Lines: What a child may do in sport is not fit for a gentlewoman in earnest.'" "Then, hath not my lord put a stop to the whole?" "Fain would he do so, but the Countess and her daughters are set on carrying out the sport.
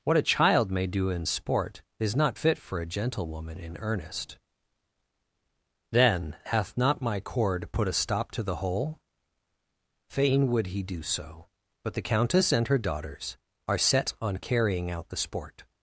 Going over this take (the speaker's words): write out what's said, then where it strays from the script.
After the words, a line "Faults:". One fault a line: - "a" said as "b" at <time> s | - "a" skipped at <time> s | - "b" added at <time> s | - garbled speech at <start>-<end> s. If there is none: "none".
What a child may do in sport is not fit for a gentlewoman in earnest.'" "Then, hath not my cord put a stop to the whole?" "Fain would he do so, but the Countess and her daughters are set on carrying out the sport.
Faults:
- "lord" said as "cord" at 7.2 s